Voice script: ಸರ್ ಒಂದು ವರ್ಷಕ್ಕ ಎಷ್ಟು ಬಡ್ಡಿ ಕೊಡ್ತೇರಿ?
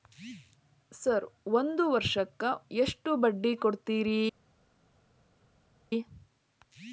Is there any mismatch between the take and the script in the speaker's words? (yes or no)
no